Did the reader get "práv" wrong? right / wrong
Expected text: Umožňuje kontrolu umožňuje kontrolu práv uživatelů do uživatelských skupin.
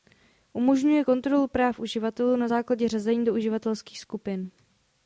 wrong